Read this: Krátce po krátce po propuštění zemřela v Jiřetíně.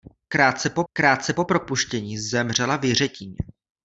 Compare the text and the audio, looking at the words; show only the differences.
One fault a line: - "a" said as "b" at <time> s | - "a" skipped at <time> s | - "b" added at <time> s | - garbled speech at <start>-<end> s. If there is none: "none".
none